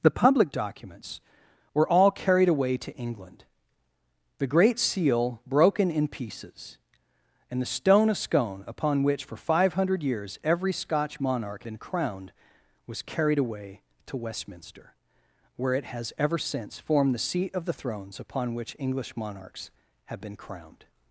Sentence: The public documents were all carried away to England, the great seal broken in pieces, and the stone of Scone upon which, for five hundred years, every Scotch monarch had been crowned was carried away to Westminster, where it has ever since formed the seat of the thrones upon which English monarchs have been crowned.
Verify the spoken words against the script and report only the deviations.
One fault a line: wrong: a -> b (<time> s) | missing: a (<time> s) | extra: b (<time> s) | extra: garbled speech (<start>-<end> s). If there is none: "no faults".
missing: had (11.7 s)